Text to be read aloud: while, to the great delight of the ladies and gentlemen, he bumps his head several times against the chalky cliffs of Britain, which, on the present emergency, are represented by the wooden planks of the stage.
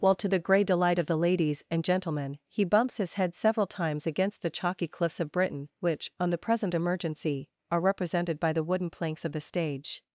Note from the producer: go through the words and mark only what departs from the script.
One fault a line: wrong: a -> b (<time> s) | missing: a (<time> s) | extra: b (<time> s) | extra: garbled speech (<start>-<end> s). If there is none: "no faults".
wrong: great -> grey (0.4 s)